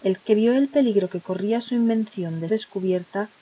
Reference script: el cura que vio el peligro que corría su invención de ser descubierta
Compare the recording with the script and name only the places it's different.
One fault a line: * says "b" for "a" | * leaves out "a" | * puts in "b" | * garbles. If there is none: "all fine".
* leaves out "cura"
* leaves out "ser"